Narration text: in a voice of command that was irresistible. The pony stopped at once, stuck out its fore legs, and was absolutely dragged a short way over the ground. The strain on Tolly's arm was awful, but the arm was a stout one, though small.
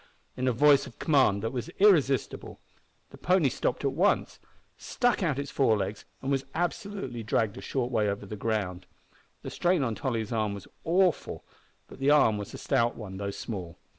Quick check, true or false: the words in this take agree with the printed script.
true